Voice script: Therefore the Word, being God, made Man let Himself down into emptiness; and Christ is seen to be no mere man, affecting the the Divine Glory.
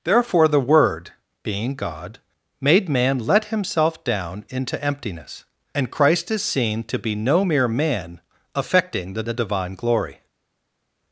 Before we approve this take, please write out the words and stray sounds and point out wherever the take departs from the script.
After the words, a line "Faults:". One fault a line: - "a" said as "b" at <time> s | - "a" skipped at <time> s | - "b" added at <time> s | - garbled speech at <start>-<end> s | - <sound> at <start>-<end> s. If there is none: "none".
Therefore the Word, being God, made Man let Himself down into emptiness; and Christ is seen to be no mere man, affecting the the Divine Glory.
Faults:
none